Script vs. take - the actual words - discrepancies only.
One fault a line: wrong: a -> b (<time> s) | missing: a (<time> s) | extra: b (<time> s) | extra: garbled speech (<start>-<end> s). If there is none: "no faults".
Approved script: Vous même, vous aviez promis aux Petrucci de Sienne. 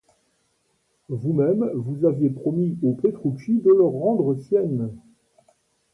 extra: leur rendre (3.7 s)